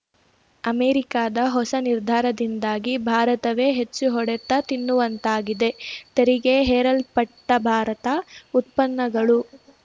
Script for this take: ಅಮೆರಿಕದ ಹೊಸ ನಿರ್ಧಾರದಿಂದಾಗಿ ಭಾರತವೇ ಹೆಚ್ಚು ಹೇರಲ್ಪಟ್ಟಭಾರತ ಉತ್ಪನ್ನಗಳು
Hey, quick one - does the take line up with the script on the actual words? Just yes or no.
no